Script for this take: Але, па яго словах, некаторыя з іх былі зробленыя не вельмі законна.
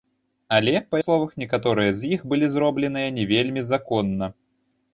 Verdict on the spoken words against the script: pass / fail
fail